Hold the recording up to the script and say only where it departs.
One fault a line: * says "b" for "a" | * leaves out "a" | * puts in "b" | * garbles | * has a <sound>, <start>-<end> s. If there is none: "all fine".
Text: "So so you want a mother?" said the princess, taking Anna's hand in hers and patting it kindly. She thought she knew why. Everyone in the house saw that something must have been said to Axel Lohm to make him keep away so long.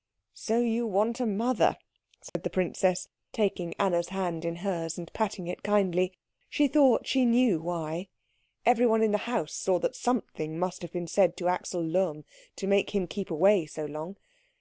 * leaves out "so"
* has a dropout, 2.3-2.4 s